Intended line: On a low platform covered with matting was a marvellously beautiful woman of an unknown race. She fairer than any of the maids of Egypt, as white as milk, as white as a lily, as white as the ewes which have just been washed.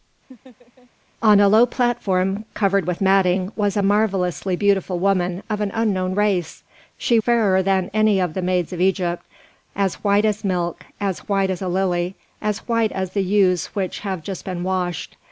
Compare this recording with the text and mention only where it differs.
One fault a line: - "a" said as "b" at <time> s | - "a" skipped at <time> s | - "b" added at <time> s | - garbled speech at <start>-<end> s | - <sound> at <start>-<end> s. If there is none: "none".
- laugh at 0.3-0.9 s